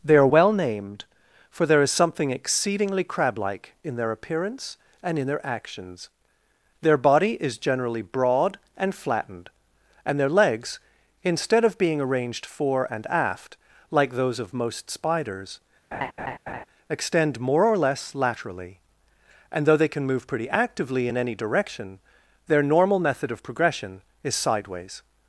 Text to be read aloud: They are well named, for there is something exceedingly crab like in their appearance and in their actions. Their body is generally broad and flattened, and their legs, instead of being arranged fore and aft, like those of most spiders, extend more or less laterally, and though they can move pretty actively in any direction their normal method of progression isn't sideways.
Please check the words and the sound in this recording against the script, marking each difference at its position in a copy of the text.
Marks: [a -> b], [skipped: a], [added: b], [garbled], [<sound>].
They are well named, for there is something exceedingly crab like in their appearance and in their actions. Their body is generally broad and flattened, and their legs, instead of being arranged fore and aft, like those of most spiders, [laugh] extend more or less laterally, and though they can move pretty actively in any direction their normal method of progression [isn't -> is] sideways.